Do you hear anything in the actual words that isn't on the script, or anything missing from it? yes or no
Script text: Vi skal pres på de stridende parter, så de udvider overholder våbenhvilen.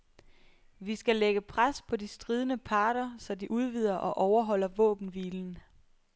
yes